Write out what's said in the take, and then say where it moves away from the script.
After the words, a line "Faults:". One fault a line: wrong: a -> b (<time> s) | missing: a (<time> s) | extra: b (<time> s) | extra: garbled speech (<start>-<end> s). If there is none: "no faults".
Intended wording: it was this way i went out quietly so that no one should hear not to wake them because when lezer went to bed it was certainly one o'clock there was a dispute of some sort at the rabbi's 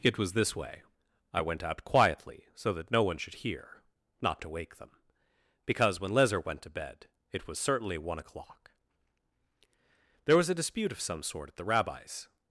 it was this way i went out quietly so that no one should hear not to wake them because when lezer went to bed it was certainly one o'clock there was a dispute of some sort at the rabbi's
Faults:
no faults